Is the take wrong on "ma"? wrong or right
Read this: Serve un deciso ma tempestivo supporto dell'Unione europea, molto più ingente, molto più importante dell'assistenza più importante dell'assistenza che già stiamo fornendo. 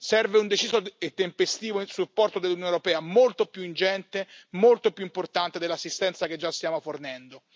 wrong